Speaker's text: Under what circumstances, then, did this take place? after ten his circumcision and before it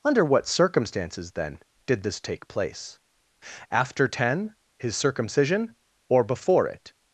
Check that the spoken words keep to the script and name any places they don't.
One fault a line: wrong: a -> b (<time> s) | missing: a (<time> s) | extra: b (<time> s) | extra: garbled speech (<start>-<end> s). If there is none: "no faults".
wrong: and -> or (6.1 s)